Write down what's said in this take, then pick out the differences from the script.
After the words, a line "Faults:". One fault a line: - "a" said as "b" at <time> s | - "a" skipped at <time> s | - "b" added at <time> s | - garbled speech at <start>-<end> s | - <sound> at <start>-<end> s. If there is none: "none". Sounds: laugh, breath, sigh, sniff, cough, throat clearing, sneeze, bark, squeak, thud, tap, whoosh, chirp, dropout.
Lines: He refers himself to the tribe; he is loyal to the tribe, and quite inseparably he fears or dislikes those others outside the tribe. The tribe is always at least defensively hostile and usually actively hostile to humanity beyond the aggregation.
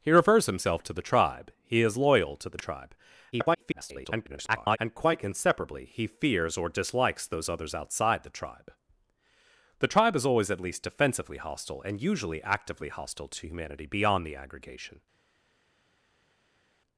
He refers himself to the tribe; he is loyal to the tribe, [garbled] and quite inseparably he fears or dislikes those others outside the tribe. The tribe is always at least defensively hostile and usually actively hostile to humanity beyond the aggregation.
Faults:
- garbled speech at 3.3-4.8 s